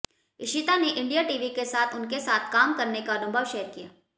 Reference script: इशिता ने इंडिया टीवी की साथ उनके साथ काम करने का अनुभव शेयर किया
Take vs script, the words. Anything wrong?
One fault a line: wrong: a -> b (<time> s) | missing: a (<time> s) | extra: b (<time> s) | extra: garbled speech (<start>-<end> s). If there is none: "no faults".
wrong: की -> के (1.5 s)